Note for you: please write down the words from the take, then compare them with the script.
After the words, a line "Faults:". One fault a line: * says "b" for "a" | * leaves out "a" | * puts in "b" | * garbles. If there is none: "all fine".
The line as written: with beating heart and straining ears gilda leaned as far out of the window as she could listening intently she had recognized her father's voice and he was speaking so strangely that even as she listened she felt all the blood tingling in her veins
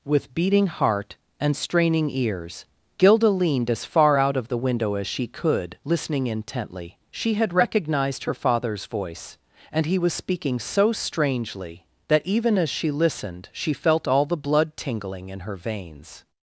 with beating heart and straining ears gilda leaned as far out of the window as she could listening intently she had recognized her father's voice and he was speaking so strangely that even as she listened she felt all the blood tingling in her veins
Faults:
all fine